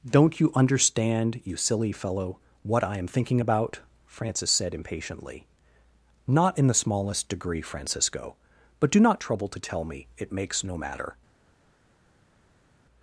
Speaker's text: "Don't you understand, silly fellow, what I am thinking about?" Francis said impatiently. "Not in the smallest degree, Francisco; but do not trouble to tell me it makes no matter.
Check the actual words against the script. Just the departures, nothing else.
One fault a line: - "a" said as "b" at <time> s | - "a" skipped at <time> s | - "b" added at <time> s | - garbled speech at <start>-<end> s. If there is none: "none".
- "you" added at 1.4 s